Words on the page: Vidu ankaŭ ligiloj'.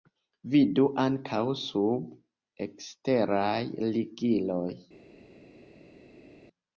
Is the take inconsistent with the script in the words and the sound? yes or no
yes